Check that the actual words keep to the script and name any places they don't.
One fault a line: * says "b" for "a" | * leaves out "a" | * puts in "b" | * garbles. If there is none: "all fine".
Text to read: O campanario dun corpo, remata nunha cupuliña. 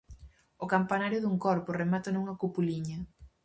all fine